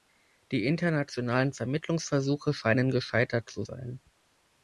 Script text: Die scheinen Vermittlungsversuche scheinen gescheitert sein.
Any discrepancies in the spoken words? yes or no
yes